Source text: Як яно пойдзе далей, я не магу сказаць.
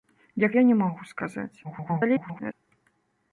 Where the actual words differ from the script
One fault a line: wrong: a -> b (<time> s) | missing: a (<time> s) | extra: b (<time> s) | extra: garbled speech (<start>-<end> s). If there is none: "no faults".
missing: яно пойдзе далей (0.6 s)
extra: garbled speech (1.6-2.5 s)